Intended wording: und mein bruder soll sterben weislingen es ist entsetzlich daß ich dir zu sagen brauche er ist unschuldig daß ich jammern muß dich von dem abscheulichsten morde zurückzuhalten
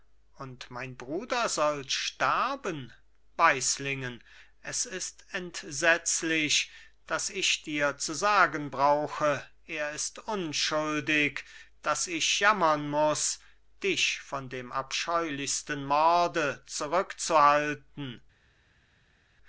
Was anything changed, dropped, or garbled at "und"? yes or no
no